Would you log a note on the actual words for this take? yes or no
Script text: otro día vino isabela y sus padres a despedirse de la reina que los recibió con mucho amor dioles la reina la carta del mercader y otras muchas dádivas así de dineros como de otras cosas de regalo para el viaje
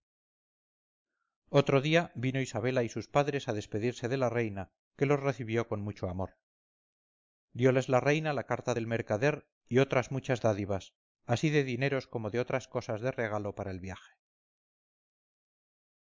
no